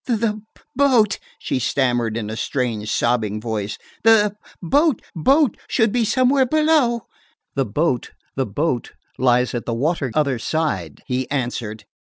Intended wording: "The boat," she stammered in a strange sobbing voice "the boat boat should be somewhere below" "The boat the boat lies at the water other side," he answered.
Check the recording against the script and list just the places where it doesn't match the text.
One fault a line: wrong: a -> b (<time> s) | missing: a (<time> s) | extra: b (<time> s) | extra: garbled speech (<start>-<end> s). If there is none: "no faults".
no faults